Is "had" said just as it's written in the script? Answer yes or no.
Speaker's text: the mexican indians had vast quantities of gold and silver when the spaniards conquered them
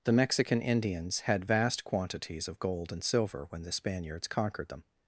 yes